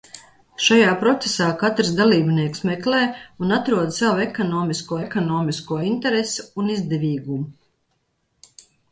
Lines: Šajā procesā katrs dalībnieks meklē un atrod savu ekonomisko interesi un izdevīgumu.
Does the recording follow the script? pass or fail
fail